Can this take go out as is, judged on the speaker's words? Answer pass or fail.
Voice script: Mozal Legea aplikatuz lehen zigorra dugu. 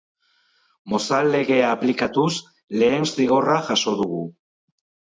fail